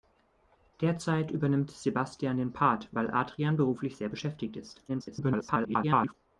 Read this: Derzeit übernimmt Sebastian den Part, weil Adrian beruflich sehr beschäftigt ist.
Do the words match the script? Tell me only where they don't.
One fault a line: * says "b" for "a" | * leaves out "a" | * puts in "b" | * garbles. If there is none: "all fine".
* garbles